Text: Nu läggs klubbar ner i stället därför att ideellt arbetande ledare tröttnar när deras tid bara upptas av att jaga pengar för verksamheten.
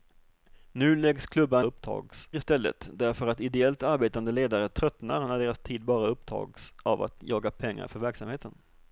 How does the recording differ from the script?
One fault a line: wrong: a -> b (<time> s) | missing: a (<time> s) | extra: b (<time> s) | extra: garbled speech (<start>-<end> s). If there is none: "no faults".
wrong: ner -> upptas (1.6 s)